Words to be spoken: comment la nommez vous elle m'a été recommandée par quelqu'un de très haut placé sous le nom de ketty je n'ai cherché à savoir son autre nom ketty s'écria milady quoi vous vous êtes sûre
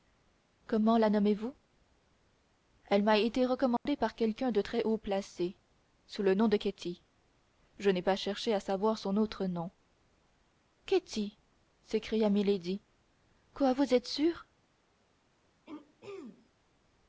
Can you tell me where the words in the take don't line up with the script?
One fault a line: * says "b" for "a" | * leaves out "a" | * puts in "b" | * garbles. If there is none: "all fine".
* puts in "pas"
* leaves out "vous"